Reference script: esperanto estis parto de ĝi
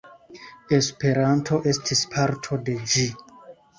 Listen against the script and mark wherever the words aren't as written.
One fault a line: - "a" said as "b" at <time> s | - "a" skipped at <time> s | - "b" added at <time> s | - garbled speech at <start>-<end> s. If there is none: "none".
none